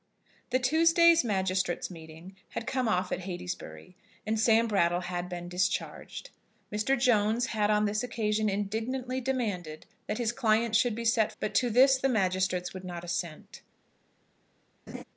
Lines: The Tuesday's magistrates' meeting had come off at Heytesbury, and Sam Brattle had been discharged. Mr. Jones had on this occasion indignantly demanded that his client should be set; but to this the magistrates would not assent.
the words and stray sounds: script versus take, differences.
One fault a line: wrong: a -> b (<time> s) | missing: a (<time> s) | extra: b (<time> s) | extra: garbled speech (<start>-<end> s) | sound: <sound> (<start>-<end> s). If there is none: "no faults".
sound: laugh (14.9-15.0 s)